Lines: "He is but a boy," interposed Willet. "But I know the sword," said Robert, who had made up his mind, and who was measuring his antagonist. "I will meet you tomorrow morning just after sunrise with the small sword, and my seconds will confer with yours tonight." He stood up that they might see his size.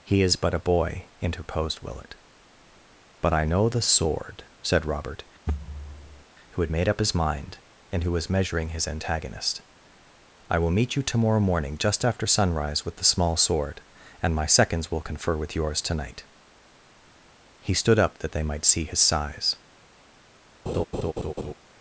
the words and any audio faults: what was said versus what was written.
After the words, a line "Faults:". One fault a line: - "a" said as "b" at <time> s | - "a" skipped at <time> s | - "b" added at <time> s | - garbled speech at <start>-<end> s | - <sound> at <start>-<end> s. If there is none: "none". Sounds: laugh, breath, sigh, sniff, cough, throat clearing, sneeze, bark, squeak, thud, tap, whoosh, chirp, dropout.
"He is but a boy," interposed Willet. "But I know the sword," said Robert, who had made up his mind, and who was measuring his antagonist. "I will meet you tomorrow morning just after sunrise with the small sword, and my seconds will confer with yours tonight." He stood up that they might see his size.
Faults:
- thud at 5.5-6.2 s
- laugh at 20.7-21.5 s